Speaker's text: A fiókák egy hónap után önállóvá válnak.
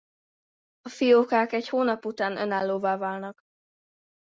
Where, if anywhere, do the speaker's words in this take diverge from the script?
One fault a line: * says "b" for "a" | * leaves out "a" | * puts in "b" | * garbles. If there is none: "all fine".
all fine